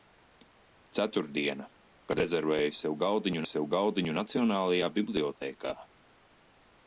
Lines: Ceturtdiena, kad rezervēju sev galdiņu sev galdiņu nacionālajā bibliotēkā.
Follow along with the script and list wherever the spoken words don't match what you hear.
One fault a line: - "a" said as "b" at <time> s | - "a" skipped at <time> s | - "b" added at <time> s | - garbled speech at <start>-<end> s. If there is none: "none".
none